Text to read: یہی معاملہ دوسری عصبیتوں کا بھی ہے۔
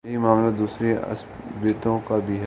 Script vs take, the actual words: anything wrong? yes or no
no